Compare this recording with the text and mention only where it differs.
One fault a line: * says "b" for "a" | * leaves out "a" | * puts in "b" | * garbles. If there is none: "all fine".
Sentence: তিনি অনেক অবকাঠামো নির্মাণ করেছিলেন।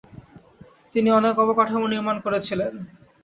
all fine